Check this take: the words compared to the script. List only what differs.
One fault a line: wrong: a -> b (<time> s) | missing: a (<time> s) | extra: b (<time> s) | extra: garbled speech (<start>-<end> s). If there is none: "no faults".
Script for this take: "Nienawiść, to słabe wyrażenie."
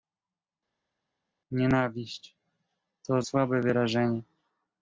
no faults